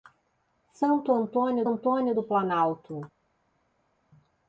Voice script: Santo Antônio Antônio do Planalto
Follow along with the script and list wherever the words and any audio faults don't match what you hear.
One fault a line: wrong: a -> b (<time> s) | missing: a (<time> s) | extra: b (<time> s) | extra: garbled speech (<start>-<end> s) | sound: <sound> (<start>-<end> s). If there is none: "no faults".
no faults